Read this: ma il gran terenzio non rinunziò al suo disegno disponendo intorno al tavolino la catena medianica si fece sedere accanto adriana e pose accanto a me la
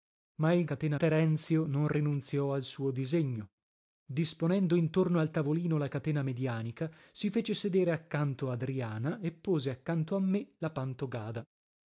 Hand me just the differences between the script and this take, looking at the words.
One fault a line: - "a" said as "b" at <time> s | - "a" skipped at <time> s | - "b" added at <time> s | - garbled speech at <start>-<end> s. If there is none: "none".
- "gran" said as "catena" at 0.7 s